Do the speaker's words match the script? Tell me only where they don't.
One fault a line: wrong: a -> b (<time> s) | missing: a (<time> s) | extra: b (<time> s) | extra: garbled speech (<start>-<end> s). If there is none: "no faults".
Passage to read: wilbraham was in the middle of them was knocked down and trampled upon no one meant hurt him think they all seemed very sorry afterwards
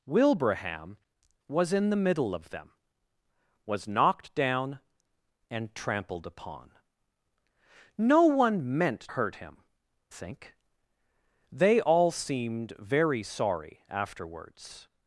no faults